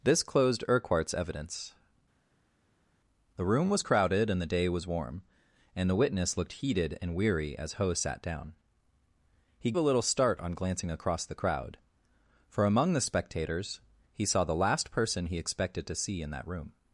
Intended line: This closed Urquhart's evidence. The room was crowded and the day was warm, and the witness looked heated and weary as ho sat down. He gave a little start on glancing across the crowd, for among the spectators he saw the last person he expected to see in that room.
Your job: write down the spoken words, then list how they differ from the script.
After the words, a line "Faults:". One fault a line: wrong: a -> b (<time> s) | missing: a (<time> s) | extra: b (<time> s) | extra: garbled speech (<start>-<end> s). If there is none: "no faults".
This closed Urquhart's evidence. The room was crowded and the day was warm, and the witness looked heated and weary as ho sat down. He a little start on glancing across the crowd, for among the spectators he saw the last person he expected to see in that room.
Faults:
missing: gave (9.7 s)